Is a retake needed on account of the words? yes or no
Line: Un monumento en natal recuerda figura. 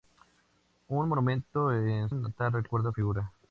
no